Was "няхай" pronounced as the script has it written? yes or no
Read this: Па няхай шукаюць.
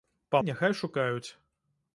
yes